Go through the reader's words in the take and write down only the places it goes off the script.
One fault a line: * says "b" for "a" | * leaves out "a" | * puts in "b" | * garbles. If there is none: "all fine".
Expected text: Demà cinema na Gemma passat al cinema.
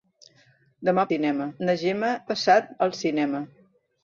all fine